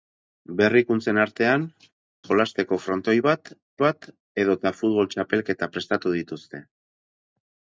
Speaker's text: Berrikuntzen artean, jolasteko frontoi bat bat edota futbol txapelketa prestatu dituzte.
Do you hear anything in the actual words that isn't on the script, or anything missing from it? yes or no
no